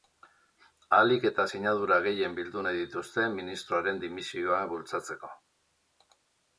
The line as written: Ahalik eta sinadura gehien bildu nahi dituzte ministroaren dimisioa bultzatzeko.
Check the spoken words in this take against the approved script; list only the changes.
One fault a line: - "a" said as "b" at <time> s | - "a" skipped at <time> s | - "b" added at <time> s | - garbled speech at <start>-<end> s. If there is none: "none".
none